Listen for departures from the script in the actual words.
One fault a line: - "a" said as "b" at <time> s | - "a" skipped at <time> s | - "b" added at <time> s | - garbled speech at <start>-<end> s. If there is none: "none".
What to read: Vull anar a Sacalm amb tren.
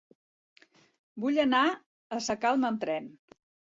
none